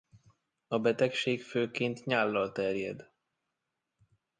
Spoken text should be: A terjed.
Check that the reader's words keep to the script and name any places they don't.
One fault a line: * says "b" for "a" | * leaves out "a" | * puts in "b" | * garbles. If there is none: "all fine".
* puts in "betegség főként nyállal"